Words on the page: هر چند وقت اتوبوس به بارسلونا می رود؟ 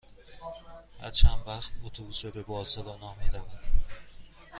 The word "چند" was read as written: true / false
true